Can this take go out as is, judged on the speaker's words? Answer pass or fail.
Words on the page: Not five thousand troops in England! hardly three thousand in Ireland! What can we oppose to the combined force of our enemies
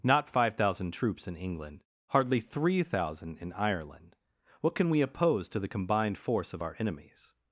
pass